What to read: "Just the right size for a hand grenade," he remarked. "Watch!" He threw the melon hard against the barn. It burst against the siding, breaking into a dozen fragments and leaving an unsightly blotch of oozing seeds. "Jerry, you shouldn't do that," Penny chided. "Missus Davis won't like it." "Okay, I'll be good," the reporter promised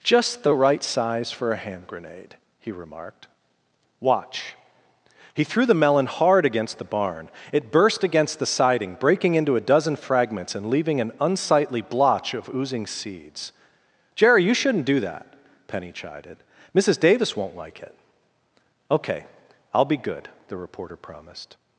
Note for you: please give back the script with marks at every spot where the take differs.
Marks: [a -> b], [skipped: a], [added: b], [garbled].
"Just the right size for a hand grenade," he remarked. "Watch!" He threw the melon hard against the barn. It burst against the siding, breaking into a dozen fragments and leaving an unsightly blotch of oozing seeds. "Jerry, you shouldn't do that," Penny chided. "Missus Davis won't like it." "Okay, I'll be good," the reporter promised